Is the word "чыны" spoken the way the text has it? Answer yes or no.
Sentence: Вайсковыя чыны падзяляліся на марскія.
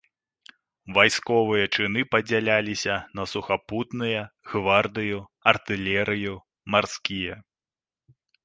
yes